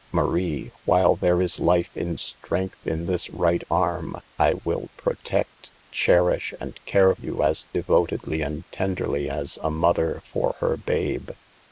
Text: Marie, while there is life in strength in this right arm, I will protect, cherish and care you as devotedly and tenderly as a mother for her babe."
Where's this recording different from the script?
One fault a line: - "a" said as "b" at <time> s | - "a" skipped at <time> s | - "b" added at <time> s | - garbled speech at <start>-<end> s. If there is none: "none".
none